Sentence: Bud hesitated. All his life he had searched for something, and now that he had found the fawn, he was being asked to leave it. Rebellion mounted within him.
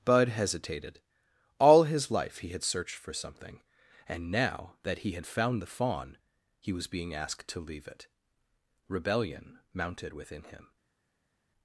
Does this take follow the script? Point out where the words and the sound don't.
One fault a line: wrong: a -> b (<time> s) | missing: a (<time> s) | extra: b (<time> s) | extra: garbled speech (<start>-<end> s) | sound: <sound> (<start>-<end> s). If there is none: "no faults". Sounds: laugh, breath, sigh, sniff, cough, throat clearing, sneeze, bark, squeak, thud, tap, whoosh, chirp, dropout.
no faults